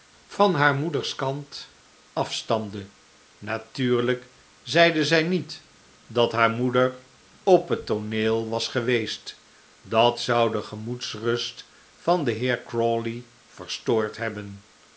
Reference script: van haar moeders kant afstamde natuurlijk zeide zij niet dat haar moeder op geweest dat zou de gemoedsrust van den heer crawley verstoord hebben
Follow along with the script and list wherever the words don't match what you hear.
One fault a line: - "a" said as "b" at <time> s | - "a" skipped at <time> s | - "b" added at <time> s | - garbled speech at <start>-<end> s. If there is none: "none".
- "het tooneel was" added at 7.7 s